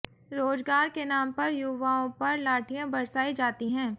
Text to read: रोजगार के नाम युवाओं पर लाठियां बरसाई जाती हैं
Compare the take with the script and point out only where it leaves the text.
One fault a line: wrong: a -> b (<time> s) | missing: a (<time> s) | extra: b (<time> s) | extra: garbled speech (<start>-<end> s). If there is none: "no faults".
extra: पर (1.3 s)